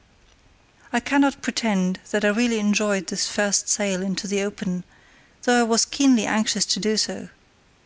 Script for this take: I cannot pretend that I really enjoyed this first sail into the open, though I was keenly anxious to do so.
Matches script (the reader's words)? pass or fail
pass